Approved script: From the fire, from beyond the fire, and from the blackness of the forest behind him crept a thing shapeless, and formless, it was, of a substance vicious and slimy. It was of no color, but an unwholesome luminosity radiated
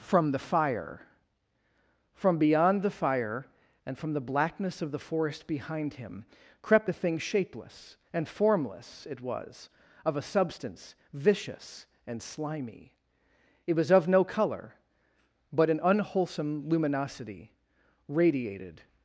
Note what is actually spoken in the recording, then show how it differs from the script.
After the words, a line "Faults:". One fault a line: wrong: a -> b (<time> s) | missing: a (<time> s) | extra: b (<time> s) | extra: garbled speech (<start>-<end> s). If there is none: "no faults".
From the fire, from beyond the fire, and from the blackness of the forest behind him crept a thing shapeless, and formless, it was, of a substance vicious and slimy. It was of no color, but an unwholesome luminosity radiated
Faults:
no faults